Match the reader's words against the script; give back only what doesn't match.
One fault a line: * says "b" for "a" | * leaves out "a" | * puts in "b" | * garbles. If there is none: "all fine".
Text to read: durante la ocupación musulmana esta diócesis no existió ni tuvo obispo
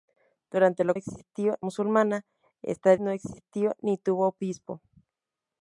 * says "existió" for "ocupación"
* leaves out "diócesis"